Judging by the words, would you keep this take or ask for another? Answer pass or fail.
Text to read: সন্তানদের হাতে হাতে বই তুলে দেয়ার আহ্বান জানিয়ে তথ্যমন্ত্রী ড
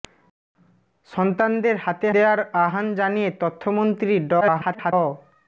fail